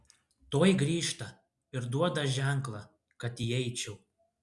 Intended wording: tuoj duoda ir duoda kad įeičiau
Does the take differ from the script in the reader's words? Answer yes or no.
yes